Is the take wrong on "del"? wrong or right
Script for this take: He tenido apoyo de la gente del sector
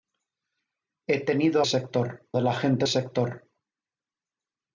wrong